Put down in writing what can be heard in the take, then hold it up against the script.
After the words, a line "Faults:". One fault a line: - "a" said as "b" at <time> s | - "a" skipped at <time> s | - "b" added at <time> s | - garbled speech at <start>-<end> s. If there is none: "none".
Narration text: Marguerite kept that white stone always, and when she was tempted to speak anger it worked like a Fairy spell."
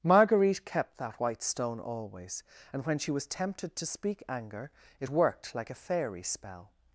Marguerite kept that white stone always, and when she was tempted to speak anger it worked like a Fairy spell."
Faults:
none